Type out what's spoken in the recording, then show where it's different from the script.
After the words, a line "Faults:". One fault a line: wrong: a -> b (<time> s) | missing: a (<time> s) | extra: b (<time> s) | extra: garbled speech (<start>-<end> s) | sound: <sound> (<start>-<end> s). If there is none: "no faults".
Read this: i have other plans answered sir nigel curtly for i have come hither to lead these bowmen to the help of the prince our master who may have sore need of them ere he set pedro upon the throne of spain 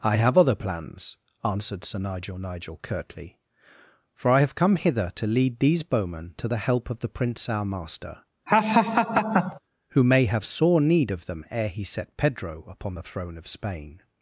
i have other plans answered sir nigel nigel curtly for i have come hither to lead these bowmen to the help of the prince our master who may have sore need of them ere he set pedro upon the throne of spain
Faults:
extra: nigel (2.4 s)
sound: laugh (8.5-9.6 s)